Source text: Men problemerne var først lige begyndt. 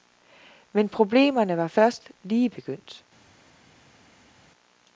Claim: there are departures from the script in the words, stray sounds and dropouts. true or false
false